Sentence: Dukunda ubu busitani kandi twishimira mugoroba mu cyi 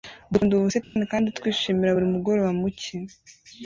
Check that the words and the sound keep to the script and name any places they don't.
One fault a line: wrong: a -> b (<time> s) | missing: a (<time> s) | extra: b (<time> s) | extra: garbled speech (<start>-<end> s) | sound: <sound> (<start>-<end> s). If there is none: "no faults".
sound: dropout (0.8-1.0 s)
extra: buri (1.9 s)